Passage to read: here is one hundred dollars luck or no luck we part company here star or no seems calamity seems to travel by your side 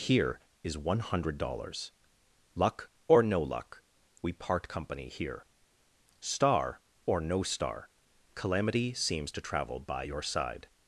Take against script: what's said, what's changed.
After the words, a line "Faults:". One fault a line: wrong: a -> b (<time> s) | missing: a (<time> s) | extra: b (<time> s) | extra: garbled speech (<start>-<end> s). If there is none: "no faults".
here is one hundred dollars luck or no luck we part company here star or no star calamity seems to travel by your side
Faults:
wrong: seems -> star (7.4 s)